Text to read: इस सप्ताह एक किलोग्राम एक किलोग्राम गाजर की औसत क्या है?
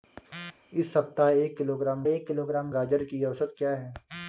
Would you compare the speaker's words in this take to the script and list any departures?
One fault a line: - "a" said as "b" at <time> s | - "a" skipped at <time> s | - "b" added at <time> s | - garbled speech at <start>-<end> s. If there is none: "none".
none